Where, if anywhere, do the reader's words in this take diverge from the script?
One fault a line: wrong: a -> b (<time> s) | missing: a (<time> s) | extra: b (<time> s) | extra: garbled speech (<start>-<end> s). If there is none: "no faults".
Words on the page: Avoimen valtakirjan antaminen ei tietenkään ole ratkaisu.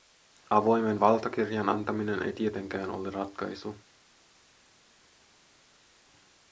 no faults